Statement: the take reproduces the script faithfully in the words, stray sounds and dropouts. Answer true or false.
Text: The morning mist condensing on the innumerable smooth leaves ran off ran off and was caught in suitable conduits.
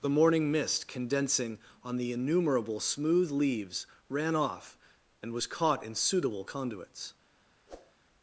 false